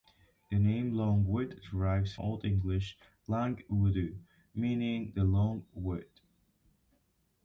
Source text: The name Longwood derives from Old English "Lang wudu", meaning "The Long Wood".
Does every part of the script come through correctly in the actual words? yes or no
no